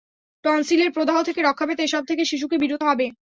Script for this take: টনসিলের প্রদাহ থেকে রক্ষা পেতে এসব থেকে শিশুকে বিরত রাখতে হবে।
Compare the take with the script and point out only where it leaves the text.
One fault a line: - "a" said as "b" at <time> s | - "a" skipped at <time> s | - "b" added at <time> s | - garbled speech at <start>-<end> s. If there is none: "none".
- "রাখতে" skipped at 2.8 s